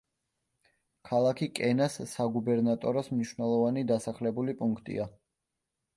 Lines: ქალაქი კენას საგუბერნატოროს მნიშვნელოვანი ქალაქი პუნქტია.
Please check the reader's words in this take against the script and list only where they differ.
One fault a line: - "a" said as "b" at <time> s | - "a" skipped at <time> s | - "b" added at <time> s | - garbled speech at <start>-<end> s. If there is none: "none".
- "ქალაქი" said as "დასახლებული" at 3.9 s